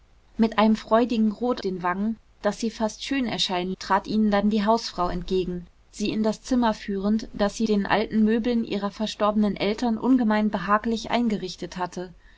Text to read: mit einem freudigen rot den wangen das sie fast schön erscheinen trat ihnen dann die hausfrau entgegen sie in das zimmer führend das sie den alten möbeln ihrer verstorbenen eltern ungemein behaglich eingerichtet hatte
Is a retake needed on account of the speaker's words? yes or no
no